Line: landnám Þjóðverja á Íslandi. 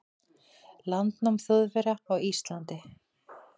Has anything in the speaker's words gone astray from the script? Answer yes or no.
no